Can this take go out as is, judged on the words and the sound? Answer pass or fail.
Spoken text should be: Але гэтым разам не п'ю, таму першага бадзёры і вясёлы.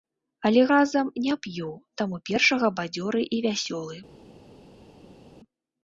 fail